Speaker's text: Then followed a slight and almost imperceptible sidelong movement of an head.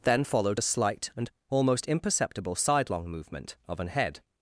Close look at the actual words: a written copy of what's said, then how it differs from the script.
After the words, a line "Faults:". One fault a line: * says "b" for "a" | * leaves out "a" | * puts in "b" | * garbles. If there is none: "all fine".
Then followed a slight and almost imperceptible sidelong movement of an head.
Faults:
all fine